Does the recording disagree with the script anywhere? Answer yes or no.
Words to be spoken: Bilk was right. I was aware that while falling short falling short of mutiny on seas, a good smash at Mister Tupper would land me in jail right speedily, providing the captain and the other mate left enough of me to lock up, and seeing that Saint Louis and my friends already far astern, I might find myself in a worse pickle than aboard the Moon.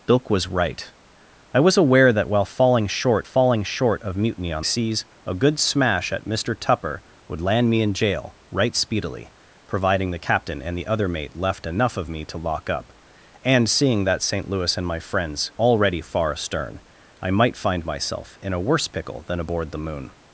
no